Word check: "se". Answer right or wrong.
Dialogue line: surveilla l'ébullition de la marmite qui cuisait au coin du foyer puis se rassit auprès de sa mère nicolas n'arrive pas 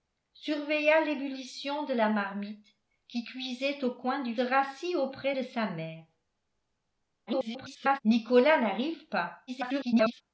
wrong